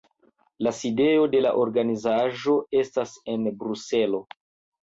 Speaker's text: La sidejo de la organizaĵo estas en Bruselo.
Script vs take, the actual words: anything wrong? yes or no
no